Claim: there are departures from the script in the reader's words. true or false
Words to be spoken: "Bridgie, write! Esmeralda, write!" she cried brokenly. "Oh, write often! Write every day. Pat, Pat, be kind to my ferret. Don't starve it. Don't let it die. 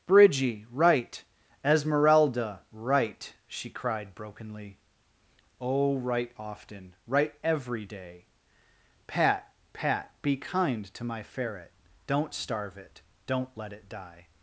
false